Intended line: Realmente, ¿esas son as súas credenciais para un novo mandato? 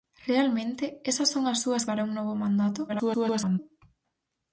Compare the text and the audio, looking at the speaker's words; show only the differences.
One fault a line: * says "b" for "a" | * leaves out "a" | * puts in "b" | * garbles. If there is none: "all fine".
* leaves out "credenciais"
* garbles